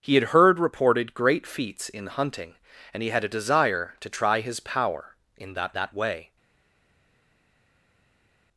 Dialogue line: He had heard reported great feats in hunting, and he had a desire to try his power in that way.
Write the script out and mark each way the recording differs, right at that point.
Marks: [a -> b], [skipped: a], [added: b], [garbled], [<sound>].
He had heard reported great feats in hunting, and he had a desire to try his power in that [added: that] way.